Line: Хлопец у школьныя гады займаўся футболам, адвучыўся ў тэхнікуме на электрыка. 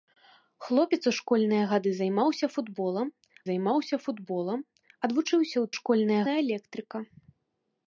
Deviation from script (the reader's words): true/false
true